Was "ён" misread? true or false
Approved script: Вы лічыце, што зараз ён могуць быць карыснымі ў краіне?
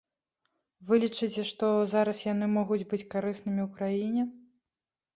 true